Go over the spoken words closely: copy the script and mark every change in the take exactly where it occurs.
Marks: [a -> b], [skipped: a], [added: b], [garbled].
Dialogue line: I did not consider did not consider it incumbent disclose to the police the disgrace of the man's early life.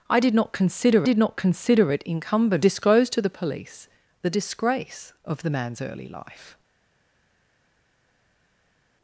I did not consider did not consider it incumbent disclose to the police the disgrace of the man's early life.